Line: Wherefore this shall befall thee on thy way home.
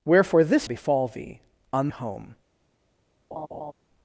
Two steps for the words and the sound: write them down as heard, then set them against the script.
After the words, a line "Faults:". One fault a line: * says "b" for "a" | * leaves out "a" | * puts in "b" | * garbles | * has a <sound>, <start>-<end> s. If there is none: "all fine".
Wherefore this befall thee on home.
Faults:
* leaves out "shall"
* leaves out "thy way"
* has a laugh, 3.3-3.7 s